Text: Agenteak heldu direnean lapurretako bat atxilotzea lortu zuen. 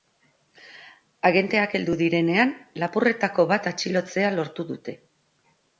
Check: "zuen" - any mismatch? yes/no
yes